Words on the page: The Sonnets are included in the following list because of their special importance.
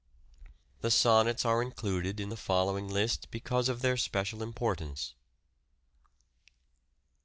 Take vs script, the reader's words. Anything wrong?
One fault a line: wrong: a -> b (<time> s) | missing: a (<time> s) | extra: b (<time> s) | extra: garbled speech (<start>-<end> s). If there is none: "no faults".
no faults